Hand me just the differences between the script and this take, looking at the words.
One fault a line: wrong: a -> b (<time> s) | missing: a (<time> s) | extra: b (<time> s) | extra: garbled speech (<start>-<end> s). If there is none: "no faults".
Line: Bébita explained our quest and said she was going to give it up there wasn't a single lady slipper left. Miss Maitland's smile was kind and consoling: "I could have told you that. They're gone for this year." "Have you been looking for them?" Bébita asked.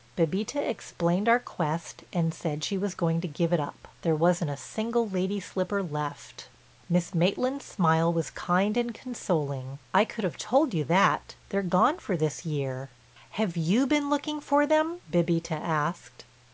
no faults